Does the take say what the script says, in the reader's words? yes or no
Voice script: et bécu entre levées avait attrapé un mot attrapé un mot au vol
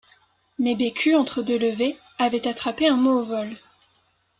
no